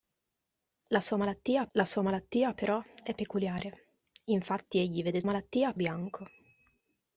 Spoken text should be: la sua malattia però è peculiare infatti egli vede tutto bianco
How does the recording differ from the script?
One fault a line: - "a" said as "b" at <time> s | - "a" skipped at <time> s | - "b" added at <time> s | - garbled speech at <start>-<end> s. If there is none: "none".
- "la sua malattia" added at 1.7 s
- "tutto" said as "malattia" at 5.2 s